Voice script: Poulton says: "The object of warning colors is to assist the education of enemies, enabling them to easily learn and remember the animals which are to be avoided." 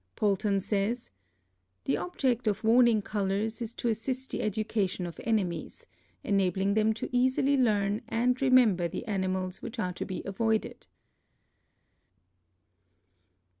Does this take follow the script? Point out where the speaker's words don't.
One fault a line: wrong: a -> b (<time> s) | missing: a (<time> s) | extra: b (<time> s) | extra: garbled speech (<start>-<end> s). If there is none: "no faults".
no faults